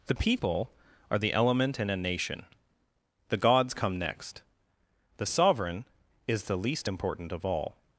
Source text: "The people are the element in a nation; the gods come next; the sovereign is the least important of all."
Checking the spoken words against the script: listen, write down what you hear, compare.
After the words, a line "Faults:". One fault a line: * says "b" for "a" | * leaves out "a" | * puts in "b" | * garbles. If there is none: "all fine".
"The people are the element in a nation; the gods come next; the sovereign is the least important of all."
Faults:
all fine